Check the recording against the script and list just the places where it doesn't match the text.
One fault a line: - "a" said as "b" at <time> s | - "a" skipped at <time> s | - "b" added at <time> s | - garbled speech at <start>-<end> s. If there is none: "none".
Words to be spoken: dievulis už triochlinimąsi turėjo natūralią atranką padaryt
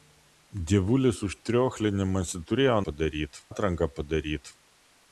- "natūralią" said as "padaryt" at 2.9 s